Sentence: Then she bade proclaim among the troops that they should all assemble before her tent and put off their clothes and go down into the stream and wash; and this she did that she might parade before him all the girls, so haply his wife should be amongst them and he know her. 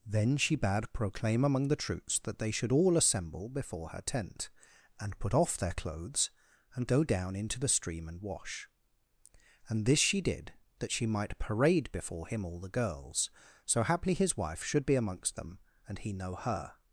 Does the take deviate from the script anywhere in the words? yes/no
no